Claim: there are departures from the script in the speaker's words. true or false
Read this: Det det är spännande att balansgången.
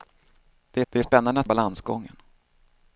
false